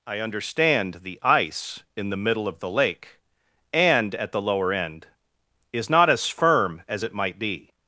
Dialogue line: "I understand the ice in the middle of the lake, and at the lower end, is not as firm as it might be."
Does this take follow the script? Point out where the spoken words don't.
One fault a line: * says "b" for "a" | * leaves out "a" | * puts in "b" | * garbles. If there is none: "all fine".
all fine